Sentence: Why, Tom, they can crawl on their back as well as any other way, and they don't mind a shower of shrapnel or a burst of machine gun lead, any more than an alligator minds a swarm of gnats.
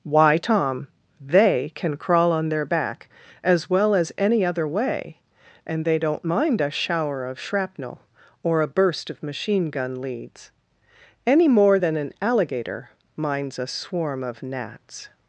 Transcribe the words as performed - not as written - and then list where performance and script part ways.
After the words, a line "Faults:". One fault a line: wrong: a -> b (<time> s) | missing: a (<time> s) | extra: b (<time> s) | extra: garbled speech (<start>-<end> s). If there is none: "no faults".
Why, Tom, they can crawl on their back as well as any other way, and they don't mind a shower of shrapnel or a burst of machine gun leads, any more than an alligator minds a swarm of gnats.
Faults:
wrong: lead -> leads (10.0 s)